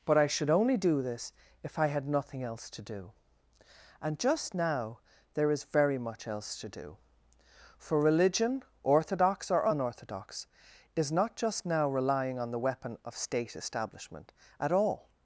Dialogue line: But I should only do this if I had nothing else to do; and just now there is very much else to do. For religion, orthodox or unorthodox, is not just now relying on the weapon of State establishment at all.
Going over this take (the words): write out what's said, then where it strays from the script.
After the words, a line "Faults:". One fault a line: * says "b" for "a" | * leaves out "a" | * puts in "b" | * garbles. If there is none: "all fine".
But I should only do this if I had nothing else to do; and just now there is very much else to do. For religion, orthodox or unorthodox, is not just now relying on the weapon of State establishment at all.
Faults:
all fine